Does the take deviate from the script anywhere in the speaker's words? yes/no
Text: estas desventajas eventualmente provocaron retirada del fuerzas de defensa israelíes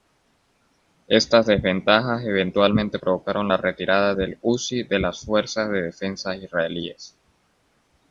yes